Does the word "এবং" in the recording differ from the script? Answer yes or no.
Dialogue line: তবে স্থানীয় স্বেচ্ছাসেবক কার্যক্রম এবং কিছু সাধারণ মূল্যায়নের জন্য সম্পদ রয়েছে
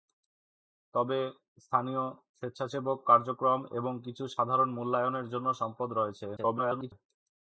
no